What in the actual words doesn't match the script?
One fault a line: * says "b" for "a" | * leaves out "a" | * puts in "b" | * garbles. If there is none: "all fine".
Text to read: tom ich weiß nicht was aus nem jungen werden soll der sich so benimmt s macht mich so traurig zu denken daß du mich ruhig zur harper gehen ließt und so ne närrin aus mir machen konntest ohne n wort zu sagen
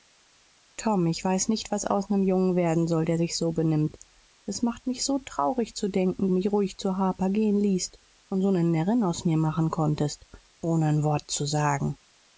* leaves out "daß du"